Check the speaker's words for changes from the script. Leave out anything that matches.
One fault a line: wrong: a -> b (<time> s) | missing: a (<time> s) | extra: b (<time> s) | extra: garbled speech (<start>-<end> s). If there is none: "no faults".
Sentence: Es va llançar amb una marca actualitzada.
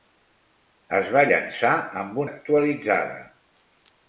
missing: una marca (2.2 s)